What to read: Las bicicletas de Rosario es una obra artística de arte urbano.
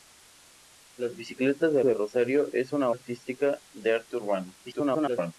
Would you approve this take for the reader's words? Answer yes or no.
no